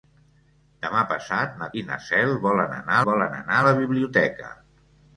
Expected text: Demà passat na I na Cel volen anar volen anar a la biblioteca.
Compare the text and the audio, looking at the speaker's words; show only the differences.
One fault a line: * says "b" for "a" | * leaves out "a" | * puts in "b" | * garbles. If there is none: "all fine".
all fine